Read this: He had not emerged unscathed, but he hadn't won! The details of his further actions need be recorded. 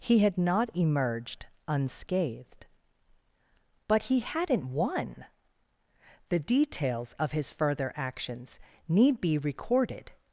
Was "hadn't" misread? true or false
false